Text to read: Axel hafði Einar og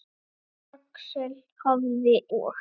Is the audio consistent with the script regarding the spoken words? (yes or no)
no